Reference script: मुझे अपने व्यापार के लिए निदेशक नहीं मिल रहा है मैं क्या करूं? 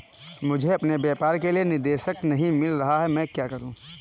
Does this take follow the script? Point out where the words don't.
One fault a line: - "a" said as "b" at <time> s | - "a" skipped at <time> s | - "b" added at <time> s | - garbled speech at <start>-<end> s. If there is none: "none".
none